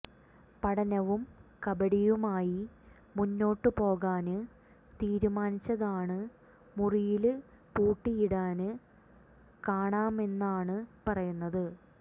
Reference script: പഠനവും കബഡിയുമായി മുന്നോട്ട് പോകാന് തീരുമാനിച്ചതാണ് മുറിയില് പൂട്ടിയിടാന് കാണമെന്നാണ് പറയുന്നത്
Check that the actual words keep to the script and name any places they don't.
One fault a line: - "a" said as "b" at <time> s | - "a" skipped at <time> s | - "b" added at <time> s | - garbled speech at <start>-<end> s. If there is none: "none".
none